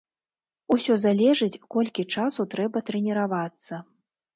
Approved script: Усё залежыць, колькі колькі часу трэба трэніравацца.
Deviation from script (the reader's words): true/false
true